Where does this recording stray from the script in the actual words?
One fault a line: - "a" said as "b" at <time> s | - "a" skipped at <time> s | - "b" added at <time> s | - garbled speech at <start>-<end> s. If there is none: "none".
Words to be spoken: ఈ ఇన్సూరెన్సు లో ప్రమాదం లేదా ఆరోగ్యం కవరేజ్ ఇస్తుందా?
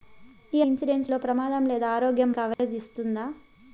none